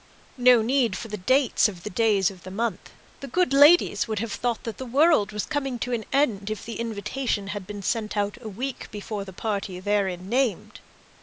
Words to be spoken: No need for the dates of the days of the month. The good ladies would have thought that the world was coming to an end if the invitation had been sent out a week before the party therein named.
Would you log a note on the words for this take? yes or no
no